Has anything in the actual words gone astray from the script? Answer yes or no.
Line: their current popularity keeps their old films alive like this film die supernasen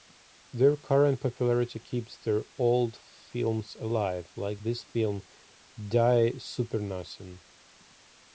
no